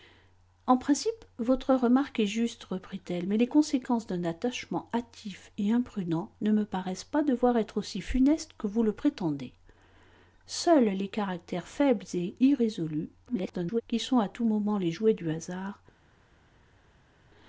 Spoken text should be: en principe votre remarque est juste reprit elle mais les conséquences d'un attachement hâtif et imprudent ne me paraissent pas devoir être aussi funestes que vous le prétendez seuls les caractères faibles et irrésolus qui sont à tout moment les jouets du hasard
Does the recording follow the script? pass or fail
fail